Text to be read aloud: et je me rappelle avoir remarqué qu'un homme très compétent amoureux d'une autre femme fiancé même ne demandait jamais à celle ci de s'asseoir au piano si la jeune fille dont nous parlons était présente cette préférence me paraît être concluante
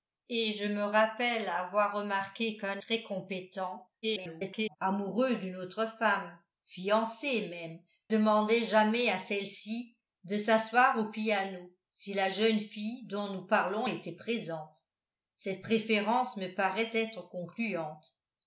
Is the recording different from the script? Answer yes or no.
yes